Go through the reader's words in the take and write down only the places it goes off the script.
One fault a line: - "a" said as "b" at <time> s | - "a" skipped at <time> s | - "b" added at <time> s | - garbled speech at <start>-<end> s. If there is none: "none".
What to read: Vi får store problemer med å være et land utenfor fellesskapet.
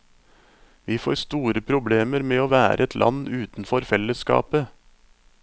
none